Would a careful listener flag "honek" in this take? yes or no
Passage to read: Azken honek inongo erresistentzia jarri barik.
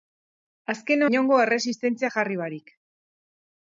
yes